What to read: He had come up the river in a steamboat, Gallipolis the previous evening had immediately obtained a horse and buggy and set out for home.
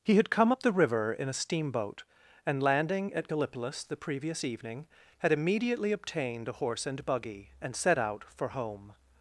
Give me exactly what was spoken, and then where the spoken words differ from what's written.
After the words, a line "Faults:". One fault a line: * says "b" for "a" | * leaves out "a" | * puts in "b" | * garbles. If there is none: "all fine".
He had come up the river in a steamboat, and landing at Gallipolis the previous evening had immediately obtained a horse and buggy and set out for home.
Faults:
* puts in "and landing at"